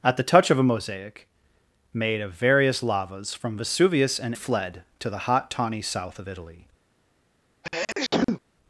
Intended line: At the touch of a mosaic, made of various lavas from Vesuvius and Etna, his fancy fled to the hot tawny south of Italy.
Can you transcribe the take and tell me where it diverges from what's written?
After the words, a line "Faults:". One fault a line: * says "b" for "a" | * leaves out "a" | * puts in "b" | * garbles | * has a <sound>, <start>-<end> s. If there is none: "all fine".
At the touch of a mosaic, made of various lavas from Vesuvius and Fled to the hot tawny south of Italy.
Faults:
* leaves out "Etna his fancy"
* has a sneeze, 7.6-8.4 s